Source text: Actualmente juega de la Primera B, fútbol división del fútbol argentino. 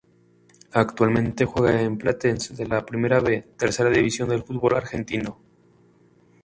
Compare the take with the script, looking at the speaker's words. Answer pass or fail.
fail